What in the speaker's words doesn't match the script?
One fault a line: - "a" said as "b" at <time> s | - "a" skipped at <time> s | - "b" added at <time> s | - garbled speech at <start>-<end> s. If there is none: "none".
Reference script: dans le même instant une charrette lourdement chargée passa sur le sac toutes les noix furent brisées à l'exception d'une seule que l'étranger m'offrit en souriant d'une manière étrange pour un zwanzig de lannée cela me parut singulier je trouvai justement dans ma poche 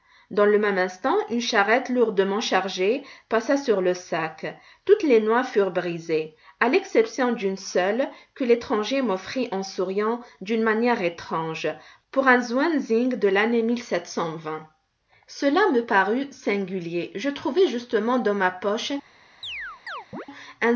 none